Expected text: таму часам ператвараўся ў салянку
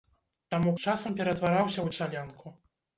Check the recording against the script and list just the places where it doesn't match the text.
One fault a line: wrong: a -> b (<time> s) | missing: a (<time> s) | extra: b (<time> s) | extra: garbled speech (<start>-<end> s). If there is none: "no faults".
no faults